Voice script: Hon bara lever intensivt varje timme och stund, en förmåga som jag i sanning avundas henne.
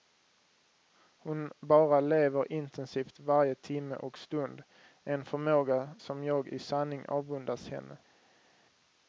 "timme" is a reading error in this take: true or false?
false